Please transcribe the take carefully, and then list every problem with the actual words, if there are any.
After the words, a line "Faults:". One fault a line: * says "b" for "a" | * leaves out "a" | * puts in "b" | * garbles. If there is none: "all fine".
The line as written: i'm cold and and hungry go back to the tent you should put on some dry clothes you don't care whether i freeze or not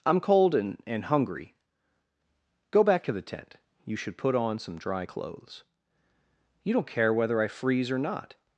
i'm cold and and hungry go back to the tent you should put on some dry clothes you don't care whether i freeze or not
Faults:
all fine